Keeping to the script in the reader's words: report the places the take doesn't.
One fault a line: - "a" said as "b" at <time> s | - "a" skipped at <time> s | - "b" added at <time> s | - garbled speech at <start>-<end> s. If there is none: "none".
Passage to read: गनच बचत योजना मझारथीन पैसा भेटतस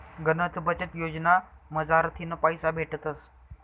none